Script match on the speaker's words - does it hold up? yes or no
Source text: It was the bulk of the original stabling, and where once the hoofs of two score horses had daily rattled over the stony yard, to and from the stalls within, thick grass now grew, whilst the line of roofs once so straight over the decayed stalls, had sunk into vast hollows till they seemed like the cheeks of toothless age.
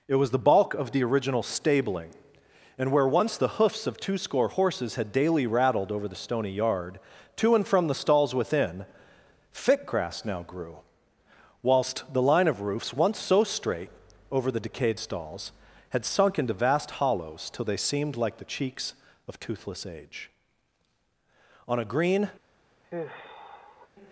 no